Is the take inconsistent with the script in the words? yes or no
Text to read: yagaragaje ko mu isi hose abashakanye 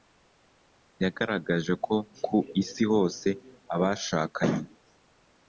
yes